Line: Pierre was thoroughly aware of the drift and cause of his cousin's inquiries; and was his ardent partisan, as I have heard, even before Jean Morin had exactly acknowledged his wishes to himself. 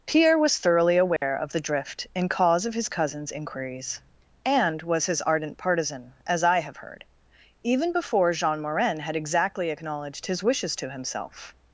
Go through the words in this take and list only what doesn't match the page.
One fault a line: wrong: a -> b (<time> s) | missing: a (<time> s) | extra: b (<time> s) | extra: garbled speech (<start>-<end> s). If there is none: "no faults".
no faults